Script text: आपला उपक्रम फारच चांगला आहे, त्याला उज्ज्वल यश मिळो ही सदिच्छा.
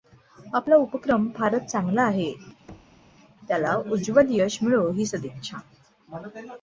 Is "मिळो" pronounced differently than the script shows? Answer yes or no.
no